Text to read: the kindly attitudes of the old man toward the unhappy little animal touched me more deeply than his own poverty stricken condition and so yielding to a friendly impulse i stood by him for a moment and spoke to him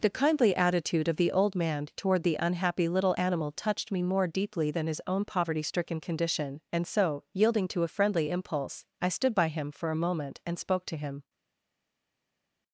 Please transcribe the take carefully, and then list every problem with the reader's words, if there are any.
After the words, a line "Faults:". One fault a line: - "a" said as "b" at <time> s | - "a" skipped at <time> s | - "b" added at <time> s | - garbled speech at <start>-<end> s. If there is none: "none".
the kindly attitude of the old man toward the unhappy little animal touched me more deeply than his own poverty stricken condition and so yielding to a friendly impulse i stood by him for a moment and spoke to him
Faults:
- "attitudes" said as "attitude" at 0.6 s